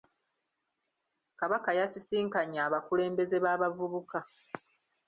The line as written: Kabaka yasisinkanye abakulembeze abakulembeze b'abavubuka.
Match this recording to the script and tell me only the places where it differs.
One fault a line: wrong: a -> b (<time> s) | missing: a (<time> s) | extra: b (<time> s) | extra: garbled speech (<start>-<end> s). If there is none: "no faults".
missing: abakulembeze (3.4 s)